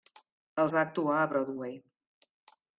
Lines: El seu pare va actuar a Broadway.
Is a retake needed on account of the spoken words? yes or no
yes